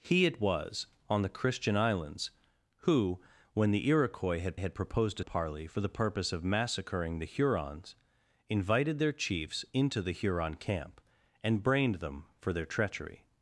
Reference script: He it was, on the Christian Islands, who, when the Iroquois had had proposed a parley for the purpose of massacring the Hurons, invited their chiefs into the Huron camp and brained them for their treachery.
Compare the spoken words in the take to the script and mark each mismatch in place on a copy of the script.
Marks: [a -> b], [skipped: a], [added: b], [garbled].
He it was, on the Christian Islands, who, when the Iroquois had had proposed a parley for the purpose of massacring the Hurons, invited their chiefs into the Huron camp and brained them for their treachery.